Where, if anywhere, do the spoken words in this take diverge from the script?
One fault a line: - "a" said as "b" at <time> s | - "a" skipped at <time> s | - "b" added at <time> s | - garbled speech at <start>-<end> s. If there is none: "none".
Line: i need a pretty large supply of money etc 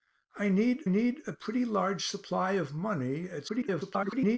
- "need" added at 0.9 s
- garbled speech at 3.5-4.4 s